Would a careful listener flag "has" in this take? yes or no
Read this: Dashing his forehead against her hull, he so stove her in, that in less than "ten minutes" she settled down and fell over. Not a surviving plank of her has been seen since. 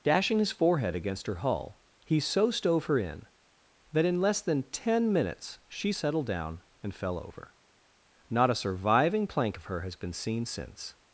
no